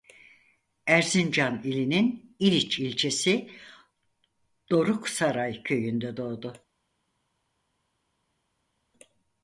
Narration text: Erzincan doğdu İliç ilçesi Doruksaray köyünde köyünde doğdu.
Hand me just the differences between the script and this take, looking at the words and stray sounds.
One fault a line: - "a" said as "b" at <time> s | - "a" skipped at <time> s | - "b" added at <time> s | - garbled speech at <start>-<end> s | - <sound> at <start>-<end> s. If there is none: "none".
- "doğdu" said as "ilinin" at 1.6 s
- "köyünde" skipped at 6.2 s